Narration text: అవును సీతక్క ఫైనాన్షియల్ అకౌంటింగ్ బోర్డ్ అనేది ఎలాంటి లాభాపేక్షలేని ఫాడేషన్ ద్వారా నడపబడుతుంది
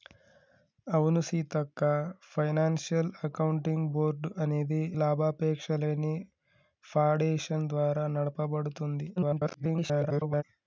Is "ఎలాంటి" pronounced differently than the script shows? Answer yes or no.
yes